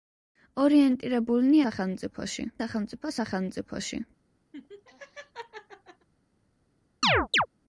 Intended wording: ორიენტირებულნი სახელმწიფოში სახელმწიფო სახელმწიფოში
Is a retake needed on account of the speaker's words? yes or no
no